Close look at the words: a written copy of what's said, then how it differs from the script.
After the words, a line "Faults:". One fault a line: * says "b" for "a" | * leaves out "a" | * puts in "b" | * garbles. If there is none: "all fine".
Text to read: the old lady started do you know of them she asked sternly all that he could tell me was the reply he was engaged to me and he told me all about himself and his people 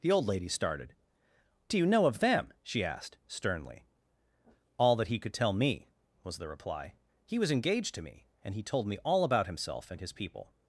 the old lady started do you know of them she asked sternly all that he could tell me was the reply he was engaged to me and he told me all about himself and his people
Faults:
all fine